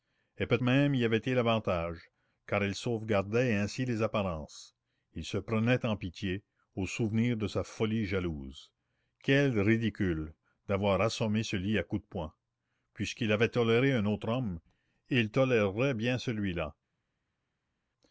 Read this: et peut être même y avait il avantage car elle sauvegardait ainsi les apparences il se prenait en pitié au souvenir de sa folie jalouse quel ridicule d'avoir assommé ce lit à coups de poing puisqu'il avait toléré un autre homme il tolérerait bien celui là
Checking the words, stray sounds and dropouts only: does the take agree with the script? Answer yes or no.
no